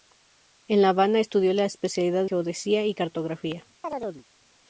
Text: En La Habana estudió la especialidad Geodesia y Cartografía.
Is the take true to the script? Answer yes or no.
yes